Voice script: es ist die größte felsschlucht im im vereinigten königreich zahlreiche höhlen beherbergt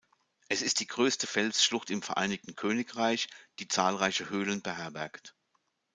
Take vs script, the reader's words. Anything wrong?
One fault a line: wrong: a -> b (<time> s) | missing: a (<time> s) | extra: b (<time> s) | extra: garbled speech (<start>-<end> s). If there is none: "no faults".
missing: im (2.0 s)
extra: die (3.6 s)